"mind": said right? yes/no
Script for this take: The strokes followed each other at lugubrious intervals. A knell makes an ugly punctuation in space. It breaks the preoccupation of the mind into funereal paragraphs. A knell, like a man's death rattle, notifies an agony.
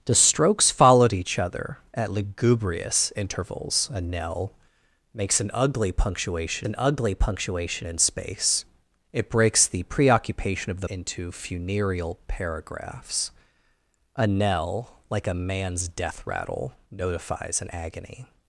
no